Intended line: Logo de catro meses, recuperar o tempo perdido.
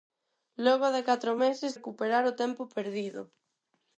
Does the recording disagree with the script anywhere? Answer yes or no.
no